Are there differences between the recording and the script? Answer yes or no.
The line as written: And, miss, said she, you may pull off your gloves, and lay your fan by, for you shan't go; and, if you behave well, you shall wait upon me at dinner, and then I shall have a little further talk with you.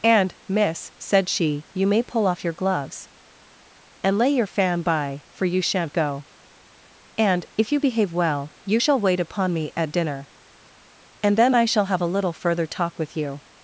no